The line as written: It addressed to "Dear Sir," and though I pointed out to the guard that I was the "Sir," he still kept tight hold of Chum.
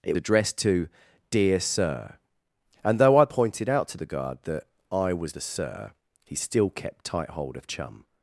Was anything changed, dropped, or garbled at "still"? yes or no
no